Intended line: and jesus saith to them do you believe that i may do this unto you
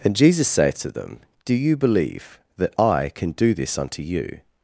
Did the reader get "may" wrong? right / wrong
wrong